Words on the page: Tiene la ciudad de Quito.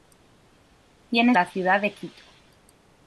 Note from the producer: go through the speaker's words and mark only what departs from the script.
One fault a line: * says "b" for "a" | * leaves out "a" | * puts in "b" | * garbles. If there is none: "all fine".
all fine